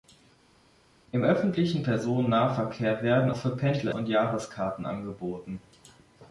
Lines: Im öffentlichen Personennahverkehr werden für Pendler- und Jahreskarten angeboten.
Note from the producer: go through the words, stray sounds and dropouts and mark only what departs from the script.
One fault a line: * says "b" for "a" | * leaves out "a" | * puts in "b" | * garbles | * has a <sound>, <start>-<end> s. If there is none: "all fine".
all fine